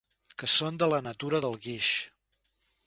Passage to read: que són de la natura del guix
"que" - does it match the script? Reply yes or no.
yes